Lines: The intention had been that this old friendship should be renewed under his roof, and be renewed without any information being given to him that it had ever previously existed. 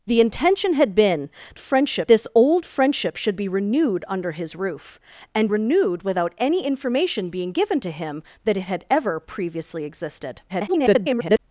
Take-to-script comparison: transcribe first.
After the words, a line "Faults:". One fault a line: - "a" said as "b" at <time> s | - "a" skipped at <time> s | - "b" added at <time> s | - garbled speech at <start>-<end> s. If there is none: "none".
The intention had been friendship this old friendship should be renewed under his roof, and renewed without any information being given to him that it had ever previously existed. [garbled]
Faults:
- "that" said as "friendship" at 1.6 s
- "be" skipped at 5.5 s
- garbled speech at 10.5-11.4 s